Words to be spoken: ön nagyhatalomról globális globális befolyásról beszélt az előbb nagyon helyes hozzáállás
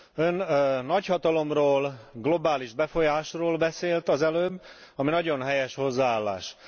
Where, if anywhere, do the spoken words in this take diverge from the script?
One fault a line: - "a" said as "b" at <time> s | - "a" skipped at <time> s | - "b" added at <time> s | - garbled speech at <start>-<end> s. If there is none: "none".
- "globális" skipped at 2.7 s
- "ami" added at 5.0 s